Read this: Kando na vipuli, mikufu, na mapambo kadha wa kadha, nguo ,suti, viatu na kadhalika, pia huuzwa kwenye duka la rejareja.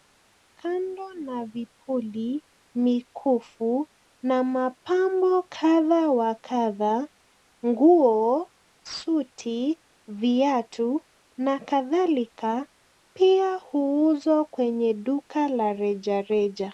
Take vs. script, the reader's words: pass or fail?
pass